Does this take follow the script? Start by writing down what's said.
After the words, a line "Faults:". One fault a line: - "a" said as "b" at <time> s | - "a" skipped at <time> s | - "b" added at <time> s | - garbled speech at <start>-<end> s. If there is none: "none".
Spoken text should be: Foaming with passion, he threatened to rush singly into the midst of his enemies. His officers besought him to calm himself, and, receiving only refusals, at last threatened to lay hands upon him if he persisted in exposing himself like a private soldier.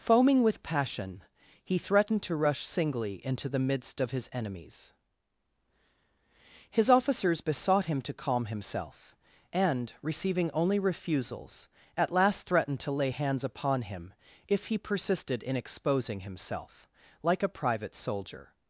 Foaming with passion, he threatened to rush singly into the midst of his enemies. His officers besought him to calm himself, and, receiving only refusals, at last threatened to lay hands upon him if he persisted in exposing himself like a private soldier.
Faults:
none